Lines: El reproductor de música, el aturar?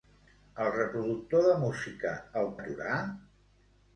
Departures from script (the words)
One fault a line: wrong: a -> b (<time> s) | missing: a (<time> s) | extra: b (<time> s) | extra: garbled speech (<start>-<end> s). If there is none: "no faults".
no faults